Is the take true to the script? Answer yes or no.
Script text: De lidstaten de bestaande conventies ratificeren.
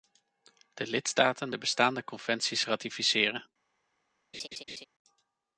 yes